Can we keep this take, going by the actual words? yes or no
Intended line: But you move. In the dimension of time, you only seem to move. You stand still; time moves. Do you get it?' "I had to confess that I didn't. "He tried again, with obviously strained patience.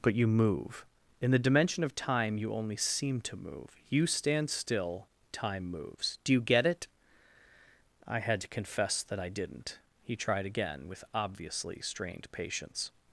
yes